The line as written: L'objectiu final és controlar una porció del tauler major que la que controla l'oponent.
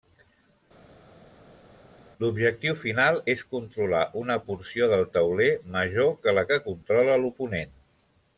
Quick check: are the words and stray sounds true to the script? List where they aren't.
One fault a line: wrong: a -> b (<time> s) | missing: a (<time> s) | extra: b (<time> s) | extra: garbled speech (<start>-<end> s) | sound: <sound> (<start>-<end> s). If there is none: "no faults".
no faults